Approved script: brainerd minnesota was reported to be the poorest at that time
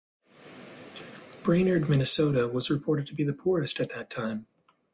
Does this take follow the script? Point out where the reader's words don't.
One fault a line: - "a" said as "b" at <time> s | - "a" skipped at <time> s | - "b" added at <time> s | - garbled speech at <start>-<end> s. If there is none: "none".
none